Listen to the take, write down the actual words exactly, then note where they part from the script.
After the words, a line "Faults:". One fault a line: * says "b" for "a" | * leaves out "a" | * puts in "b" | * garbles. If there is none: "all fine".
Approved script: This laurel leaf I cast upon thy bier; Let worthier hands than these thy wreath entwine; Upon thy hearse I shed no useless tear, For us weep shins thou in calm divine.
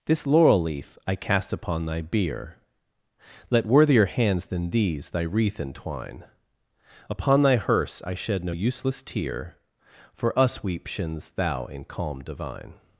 This laurel leaf I cast upon thy bier; Let worthier hands than these thy wreath entwine; Upon thy hearse I shed no useless tear, For us weep shins thou in calm divine.
Faults:
all fine